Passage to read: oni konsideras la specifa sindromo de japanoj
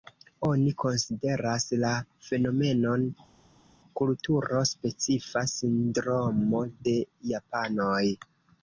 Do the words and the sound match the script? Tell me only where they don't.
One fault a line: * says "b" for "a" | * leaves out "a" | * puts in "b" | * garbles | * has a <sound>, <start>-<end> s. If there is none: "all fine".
* puts in "fenomenon kulturo"